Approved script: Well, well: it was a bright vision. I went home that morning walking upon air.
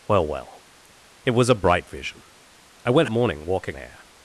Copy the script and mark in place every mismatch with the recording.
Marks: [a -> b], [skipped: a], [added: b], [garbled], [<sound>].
Well, well: it was a bright vision. I went [skipped: home that] morning walking [skipped: upon] air.